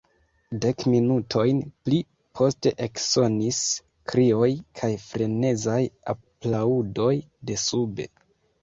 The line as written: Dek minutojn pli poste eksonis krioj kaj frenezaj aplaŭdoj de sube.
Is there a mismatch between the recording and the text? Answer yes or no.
no